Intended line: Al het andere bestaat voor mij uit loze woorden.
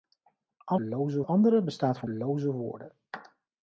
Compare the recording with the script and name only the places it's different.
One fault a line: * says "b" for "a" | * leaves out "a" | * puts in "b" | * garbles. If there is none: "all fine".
* says "loze" for "het"
* leaves out "mij uit"